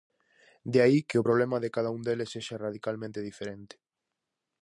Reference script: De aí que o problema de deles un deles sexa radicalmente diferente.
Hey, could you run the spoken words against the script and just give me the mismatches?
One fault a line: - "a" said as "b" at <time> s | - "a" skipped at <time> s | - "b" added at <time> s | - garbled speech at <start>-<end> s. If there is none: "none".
- "deles" said as "cada" at 1.8 s